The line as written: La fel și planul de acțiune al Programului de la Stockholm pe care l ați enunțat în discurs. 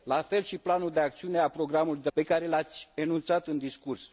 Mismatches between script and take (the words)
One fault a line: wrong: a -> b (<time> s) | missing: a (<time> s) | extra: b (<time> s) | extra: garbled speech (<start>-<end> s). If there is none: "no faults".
missing: la Stockholm (2.1 s)